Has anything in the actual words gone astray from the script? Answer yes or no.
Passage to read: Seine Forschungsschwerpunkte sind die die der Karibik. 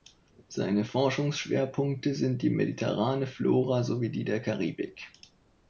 yes